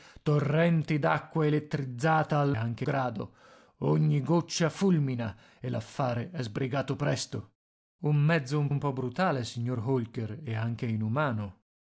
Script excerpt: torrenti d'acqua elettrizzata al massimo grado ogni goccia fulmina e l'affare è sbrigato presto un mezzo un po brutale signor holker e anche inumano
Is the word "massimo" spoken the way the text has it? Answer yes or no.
no